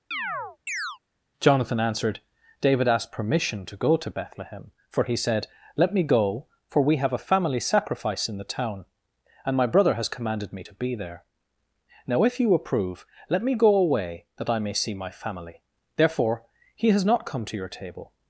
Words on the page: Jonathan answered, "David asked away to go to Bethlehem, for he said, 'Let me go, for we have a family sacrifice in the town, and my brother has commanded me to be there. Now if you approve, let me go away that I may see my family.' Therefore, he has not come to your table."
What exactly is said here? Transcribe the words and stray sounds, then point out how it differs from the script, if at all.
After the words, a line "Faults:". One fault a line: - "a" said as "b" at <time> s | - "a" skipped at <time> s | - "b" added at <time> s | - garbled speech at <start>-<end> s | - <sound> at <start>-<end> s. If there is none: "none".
Jonathan answered, "David asked permission to go to Bethlehem, for he said, 'Let me go, for we have a family sacrifice in the town, and my brother has commanded me to be there. Now if you approve, let me go away that I may see my family.' Therefore, he has not come to your table."
Faults:
- chirp at 0.1-1.0 s
- "away" said as "permission" at 3.1 s